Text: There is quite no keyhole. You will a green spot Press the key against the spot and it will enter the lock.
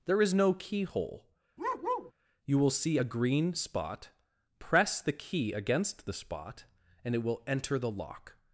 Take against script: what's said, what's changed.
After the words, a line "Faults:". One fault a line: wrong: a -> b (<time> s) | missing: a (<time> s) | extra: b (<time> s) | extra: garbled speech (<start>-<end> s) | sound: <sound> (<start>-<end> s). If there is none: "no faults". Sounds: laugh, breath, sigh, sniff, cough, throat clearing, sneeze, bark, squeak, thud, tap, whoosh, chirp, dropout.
There is no keyhole. You will see a green spot Press the key against the spot and it will enter the lock.
Faults:
missing: quite (0.3 s)
sound: bark (1.6-2.1 s)
extra: see (2.7 s)